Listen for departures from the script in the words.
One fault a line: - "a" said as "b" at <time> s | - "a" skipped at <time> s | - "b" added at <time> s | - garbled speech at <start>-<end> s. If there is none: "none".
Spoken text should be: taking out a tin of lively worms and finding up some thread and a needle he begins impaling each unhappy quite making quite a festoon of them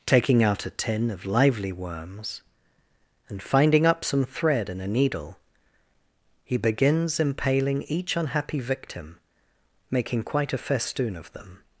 - "quite" said as "victim" at 8.6 s